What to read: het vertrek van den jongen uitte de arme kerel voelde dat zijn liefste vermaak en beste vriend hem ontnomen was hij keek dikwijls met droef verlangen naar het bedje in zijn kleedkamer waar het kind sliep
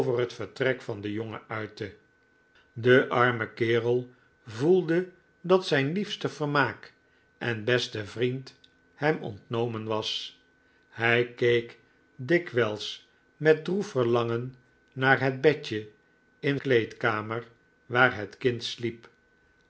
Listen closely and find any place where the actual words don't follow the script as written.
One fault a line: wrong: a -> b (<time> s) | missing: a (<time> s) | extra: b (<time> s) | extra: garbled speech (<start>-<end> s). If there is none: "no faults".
missing: zijn (16.6 s)